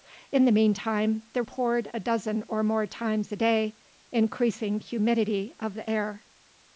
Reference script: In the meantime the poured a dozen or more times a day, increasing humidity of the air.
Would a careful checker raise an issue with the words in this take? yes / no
no